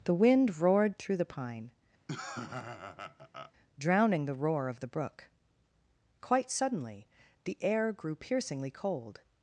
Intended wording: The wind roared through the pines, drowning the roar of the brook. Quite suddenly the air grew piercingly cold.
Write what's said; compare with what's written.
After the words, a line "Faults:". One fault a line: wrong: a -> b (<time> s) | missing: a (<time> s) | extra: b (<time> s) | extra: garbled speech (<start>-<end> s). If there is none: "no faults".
The wind roared through the pine, drowning the roar of the brook. Quite suddenly the air grew piercingly cold.
Faults:
wrong: pines -> pine (1.2 s)